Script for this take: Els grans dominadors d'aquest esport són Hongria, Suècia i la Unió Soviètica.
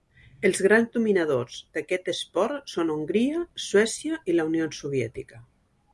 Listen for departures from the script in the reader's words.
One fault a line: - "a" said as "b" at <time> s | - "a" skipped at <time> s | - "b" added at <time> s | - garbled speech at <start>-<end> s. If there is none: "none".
none